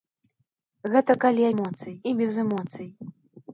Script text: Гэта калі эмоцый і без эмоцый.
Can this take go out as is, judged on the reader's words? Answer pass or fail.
pass